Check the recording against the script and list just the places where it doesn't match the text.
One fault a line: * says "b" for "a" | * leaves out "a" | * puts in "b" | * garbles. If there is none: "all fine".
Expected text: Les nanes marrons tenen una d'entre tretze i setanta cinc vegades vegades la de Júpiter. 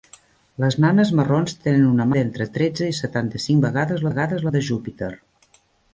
all fine